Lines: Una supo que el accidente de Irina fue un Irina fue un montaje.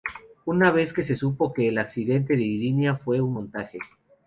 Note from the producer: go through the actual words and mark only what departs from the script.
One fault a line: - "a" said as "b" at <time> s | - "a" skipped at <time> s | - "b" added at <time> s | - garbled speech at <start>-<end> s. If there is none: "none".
- "vez que se" added at 0.7 s
- "Irina fue un" skipped at 3.3 s